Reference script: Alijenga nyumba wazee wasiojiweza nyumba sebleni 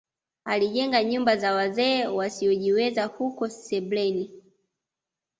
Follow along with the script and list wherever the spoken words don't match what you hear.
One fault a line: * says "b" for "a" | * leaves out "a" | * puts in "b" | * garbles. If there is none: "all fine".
* puts in "za"
* says "huko" for "nyumba"